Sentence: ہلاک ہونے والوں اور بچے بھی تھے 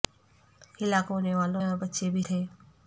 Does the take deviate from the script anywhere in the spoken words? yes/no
no